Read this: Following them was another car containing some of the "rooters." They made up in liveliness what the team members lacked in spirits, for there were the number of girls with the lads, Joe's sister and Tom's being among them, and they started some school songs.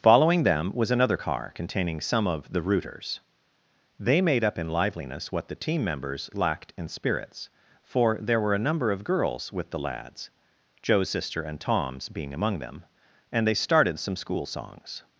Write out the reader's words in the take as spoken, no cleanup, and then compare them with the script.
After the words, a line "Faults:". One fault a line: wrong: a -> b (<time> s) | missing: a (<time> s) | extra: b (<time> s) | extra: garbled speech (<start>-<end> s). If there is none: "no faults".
Following them was another car containing some of the "rooters." They made up in liveliness what the team members lacked in spirits, for there were a number of girls with the lads, Joe's sister and Tom's being among them, and they started some school songs.
Faults:
wrong: the -> a (8.5 s)